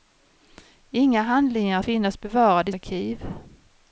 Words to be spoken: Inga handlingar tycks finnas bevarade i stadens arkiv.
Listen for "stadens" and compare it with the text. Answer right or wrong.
wrong